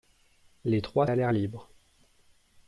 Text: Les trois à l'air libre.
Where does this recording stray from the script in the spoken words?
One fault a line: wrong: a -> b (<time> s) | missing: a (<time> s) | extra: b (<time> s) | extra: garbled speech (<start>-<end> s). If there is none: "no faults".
no faults